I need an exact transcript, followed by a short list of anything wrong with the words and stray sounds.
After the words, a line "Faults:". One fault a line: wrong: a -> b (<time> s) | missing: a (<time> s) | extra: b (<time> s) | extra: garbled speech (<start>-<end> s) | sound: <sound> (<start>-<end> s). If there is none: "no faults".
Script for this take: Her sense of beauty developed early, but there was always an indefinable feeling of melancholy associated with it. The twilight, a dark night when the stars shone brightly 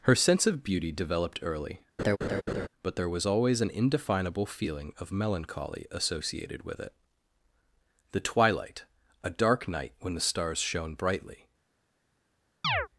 Her sense of beauty developed early, but there was always an indefinable feeling of melancholy associated with it. The twilight, a dark night when the stars shone brightly
Faults:
sound: laugh (2.0-2.7 s)
sound: chirp (12.6-12.9 s)